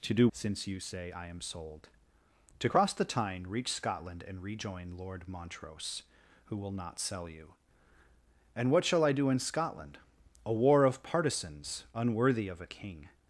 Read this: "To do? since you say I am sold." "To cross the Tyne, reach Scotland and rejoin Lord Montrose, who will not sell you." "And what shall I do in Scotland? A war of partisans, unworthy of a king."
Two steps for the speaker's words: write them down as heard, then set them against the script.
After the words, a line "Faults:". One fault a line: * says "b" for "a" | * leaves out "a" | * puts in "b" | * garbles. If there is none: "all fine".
"To do? since you say I am sold." "To cross the Tyne, reach Scotland and rejoin Lord Montrose, who will not sell you." "And what shall I do in Scotland? A war of partisans, unworthy of a king."
Faults:
all fine